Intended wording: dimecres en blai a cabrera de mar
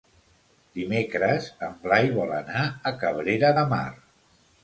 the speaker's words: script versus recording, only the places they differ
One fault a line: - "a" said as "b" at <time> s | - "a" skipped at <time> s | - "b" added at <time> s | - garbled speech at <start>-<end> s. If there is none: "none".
- "vol anar" added at 2.2 s